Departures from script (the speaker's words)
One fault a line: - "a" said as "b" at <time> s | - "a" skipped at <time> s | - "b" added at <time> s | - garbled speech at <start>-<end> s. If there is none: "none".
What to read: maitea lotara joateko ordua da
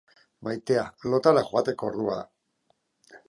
none